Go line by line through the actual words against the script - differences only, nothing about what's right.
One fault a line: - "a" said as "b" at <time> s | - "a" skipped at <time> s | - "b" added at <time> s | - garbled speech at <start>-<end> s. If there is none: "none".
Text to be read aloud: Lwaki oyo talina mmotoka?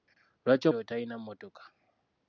none